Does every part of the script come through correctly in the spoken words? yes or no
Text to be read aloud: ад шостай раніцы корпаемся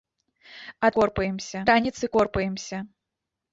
no